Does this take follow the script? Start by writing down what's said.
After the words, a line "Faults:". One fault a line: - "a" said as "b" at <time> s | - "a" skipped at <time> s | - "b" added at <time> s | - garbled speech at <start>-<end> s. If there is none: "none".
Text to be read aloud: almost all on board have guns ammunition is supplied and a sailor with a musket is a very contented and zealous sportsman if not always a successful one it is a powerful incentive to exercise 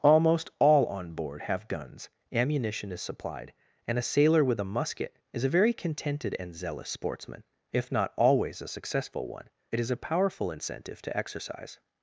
almost all on board have guns ammunition is supplied and a sailor with a musket is a very contented and zealous sportsman if not always a successful one it is a powerful incentive to exercise
Faults:
none